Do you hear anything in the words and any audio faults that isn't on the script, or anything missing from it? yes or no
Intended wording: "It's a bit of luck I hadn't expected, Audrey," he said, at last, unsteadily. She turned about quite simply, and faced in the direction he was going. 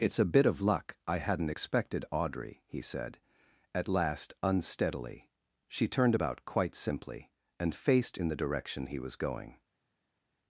no